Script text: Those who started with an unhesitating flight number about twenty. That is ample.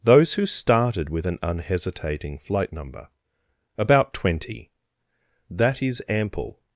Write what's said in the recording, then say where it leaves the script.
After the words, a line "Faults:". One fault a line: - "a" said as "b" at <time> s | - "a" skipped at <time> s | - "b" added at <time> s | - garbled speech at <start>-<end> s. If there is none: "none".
Those who started with an unhesitating flight number about twenty. That is ample.
Faults:
none